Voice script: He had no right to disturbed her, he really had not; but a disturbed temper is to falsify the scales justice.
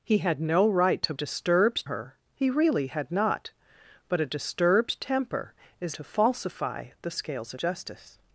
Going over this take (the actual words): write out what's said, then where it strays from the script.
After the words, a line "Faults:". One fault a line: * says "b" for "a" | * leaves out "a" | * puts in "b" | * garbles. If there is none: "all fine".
He had no right to disturbed her, he really had not; but a disturbed temper is to falsify the scales justice.
Faults:
all fine